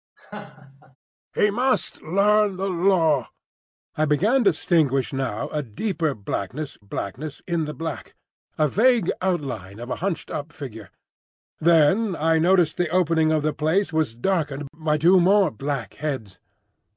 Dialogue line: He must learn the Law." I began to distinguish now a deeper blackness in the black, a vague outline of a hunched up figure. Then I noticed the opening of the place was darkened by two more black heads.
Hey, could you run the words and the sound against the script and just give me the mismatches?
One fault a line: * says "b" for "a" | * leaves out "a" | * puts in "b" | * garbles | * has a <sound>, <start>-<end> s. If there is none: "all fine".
* has a laugh, 0.2-1.0 s
* puts in "blackness"